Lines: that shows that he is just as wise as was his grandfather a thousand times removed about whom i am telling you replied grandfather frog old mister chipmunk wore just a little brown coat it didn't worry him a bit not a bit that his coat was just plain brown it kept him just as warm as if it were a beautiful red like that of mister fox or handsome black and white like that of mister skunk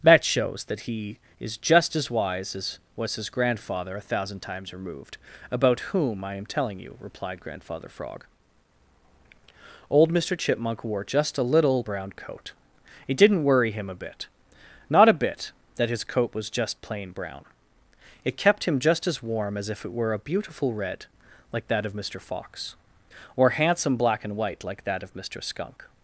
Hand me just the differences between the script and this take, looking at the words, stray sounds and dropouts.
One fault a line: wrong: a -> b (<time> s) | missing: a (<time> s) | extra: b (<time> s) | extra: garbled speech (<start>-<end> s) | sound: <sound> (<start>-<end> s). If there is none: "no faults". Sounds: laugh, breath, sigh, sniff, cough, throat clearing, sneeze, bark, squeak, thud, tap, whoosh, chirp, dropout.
no faults